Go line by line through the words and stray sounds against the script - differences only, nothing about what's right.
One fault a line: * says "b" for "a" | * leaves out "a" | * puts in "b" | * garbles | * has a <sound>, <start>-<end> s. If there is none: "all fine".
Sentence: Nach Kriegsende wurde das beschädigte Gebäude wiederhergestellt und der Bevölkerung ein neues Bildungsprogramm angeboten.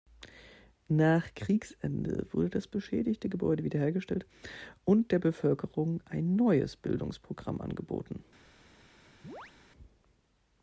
* has a chirp, 9.2-9.5 s